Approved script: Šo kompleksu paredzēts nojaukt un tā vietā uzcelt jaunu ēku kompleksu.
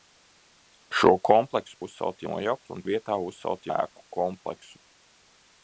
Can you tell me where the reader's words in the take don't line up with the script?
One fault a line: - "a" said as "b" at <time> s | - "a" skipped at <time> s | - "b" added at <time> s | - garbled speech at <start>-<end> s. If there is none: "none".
- "paredzēts" said as "uzcelt" at 1.9 s
- "tā" skipped at 2.8 s
- "jaunu" skipped at 3.7 s